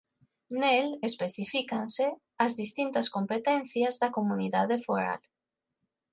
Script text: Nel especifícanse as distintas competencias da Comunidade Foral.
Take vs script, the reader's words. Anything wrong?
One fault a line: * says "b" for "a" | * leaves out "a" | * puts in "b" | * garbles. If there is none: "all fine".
all fine